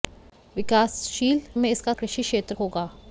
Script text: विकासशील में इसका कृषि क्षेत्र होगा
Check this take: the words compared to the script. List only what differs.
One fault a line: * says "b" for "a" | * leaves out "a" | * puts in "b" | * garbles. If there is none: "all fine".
all fine